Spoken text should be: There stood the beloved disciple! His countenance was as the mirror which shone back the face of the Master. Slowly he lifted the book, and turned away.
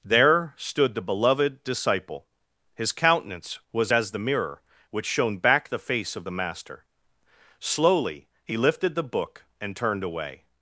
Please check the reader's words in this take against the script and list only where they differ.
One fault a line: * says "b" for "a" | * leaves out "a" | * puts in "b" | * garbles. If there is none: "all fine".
all fine